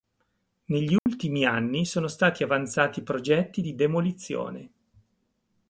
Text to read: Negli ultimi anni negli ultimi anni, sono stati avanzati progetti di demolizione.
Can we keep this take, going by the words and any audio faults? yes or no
no